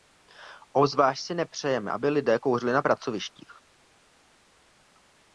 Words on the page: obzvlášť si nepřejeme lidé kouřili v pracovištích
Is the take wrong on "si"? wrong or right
right